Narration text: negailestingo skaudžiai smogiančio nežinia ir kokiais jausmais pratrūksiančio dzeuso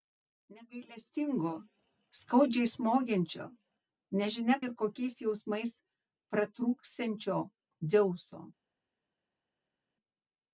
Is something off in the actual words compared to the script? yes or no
no